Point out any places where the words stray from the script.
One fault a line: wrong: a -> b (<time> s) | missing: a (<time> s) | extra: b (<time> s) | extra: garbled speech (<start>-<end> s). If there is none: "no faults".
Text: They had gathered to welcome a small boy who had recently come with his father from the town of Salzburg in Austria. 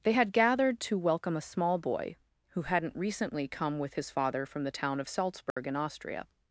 wrong: had -> hadn't (2.6 s)